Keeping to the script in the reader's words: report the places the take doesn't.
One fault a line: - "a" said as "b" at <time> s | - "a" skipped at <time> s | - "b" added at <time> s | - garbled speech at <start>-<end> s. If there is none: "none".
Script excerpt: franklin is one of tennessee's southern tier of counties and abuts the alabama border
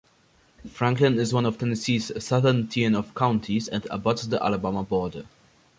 none